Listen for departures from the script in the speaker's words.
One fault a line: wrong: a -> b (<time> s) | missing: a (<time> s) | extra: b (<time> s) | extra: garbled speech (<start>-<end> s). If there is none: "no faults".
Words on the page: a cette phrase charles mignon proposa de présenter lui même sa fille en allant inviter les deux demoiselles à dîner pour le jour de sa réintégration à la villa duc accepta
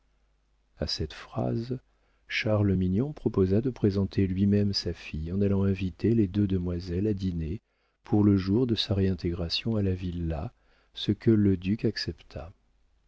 extra: ce que le (10.9 s)